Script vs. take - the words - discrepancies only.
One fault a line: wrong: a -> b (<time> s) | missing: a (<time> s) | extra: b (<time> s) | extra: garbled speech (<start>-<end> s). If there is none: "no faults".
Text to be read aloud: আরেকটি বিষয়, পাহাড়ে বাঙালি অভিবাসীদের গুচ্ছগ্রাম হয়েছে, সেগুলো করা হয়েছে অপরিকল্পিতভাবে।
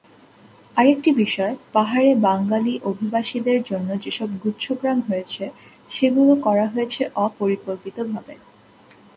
extra: জন্য যেসব (3.6 s)